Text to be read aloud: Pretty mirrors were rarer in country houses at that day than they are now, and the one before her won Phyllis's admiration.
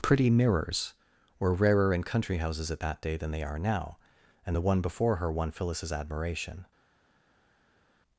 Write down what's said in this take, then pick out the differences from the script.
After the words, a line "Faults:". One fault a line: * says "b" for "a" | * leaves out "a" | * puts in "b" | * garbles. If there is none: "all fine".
Pretty mirrors were rarer in country houses at that day than they are now, and the one before her won Phyllis's admiration.
Faults:
all fine